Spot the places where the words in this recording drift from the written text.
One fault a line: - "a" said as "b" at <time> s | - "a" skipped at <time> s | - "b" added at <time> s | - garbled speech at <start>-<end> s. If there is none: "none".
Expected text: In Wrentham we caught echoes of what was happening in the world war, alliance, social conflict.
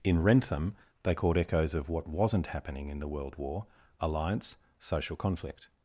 - "we" said as "they" at 1.0 s
- "was" said as "wasn't" at 2.1 s